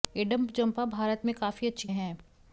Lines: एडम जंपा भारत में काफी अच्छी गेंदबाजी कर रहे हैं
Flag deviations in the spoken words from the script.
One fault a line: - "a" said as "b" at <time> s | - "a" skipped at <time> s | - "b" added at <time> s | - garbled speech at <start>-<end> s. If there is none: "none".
- "गेंदबाजी कर रहे" skipped at 1.9 s